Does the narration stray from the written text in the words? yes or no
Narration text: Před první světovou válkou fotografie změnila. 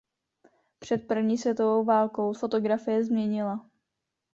no